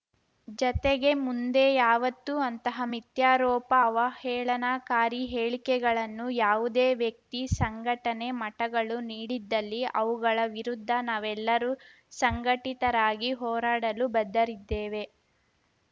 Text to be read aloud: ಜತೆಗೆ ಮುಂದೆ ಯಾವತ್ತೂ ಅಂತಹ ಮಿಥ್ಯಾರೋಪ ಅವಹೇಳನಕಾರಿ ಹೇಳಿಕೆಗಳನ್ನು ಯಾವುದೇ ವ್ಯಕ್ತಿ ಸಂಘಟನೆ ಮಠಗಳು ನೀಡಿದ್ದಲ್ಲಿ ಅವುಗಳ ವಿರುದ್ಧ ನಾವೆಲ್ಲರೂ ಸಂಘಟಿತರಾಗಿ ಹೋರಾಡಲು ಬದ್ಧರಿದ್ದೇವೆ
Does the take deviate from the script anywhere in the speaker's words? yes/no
no